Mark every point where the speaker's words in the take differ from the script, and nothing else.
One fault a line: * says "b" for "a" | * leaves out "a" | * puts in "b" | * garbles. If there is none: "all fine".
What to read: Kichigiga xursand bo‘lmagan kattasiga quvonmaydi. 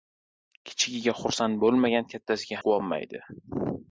all fine